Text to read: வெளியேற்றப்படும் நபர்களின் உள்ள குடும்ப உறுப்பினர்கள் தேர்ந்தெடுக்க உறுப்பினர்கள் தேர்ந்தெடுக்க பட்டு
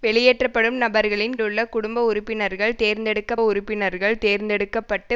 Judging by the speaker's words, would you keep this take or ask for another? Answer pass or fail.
pass